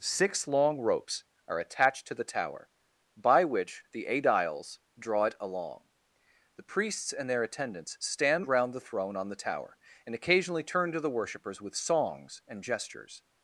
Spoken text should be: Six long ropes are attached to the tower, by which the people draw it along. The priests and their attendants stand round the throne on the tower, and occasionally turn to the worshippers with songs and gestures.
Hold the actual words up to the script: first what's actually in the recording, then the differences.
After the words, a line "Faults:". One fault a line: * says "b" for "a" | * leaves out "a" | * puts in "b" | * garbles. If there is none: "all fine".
Six long ropes are attached to the tower, by which the aediles draw it along. The priests and their attendants stand round the throne on the tower, and occasionally turn to the worshippers with songs and gestures.
Faults:
* says "aediles" for "people"